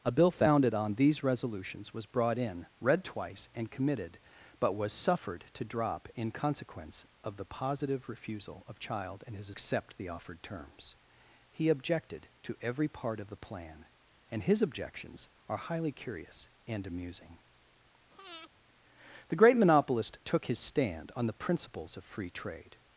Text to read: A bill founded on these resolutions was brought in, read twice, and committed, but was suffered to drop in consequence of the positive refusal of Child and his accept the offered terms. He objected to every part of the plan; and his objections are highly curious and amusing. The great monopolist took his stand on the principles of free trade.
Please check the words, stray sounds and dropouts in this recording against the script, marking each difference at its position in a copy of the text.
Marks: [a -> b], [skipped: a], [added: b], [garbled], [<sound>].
A bill founded on these resolutions was brought in, read twice, and committed, but was suffered to drop in consequence of the positive refusal of Child and his accept the offered terms. He objected to every part of the plan; and his objections are highly curious and amusing. [breath] The great monopolist took his stand on the principles of free trade.